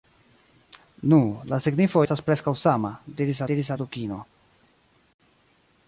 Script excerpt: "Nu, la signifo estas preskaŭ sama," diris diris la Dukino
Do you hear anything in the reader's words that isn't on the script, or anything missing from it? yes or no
no